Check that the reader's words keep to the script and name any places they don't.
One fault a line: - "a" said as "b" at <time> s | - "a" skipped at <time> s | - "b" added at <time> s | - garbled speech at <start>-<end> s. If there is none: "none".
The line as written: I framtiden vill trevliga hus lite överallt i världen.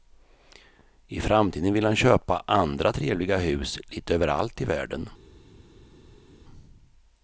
- "han köpa andra" added at 1.8 s